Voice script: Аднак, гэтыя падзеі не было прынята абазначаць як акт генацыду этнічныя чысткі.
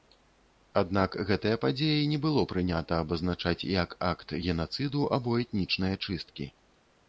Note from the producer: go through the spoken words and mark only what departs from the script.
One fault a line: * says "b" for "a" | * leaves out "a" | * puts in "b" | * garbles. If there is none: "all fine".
* puts in "або"